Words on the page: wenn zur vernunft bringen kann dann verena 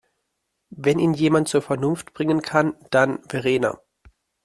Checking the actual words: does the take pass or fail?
fail